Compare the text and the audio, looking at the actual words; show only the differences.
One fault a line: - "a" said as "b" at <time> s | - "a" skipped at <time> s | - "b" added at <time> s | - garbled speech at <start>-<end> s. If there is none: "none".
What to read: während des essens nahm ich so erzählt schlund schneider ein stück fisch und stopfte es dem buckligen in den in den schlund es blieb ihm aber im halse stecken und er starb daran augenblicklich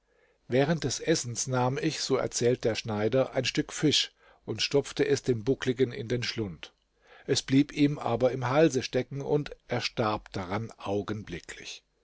- "schlund" said as "der" at 2.6 s
- "in den" skipped at 6.2 s